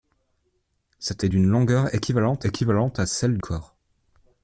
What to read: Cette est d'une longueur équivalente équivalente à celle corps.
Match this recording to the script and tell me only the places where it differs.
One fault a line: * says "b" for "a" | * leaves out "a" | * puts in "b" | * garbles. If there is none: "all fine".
all fine